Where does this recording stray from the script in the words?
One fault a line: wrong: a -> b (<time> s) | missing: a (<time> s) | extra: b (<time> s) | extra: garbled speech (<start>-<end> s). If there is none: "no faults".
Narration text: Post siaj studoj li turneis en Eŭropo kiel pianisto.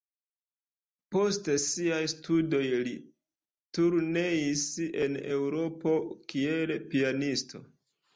no faults